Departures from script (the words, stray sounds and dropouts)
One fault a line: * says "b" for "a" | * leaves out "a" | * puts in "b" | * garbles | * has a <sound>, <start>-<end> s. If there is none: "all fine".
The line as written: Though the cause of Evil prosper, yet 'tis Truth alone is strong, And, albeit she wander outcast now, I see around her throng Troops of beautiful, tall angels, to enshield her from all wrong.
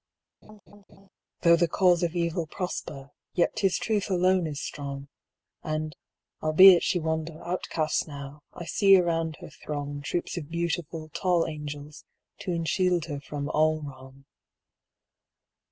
* has a laugh, 0.4-1.1 s